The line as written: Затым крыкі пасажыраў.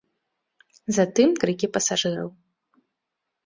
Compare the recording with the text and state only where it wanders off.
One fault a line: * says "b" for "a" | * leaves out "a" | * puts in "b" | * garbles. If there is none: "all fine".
all fine